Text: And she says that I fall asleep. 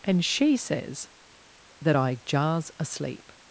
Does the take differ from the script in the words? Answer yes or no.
yes